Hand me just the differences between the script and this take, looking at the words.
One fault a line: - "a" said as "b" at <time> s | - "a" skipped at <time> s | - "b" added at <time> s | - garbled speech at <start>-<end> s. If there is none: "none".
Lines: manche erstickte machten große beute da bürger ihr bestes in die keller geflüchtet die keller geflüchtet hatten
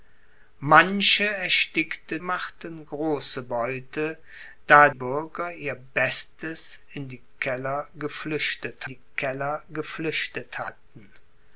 none